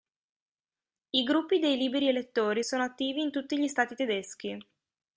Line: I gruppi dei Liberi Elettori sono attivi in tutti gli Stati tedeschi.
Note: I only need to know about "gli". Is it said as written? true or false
true